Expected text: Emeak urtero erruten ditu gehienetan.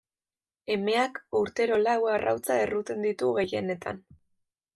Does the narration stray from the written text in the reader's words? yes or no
yes